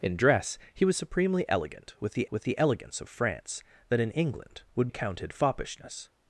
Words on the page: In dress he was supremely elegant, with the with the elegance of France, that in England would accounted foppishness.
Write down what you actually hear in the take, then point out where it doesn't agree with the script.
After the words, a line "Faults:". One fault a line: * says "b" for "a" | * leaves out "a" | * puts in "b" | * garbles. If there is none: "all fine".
In dress he was supremely elegant, with the with the elegance of France, that in England would accounted foppishness.
Faults:
all fine